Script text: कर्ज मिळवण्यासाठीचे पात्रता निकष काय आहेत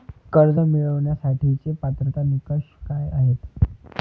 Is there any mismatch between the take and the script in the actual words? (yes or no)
no